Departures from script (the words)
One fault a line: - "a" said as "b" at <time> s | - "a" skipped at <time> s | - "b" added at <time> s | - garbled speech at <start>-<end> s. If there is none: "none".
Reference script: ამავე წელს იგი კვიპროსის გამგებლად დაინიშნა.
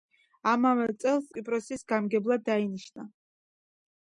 - "იგი" skipped at 1.3 s